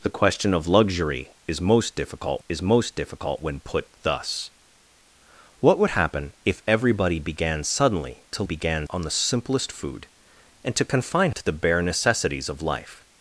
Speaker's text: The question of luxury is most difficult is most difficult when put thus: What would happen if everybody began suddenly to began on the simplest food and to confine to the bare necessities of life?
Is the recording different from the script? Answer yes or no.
no